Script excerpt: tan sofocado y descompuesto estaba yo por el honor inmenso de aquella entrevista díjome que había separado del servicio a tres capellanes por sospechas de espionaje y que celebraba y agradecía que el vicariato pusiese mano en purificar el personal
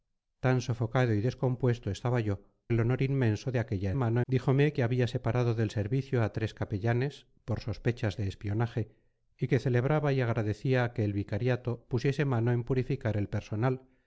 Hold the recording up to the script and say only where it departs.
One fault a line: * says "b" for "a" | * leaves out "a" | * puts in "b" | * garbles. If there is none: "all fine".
* leaves out "por"
* says "mano" for "entrevista"